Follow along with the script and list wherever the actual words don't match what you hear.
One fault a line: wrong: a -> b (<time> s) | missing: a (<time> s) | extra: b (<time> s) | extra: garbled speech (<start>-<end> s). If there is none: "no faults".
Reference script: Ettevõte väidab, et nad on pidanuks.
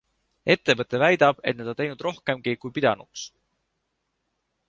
extra: teinud rohkemgi kui (1.8 s)